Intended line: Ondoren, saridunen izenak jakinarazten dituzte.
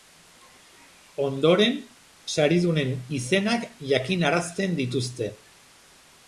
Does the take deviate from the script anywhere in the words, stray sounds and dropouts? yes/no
no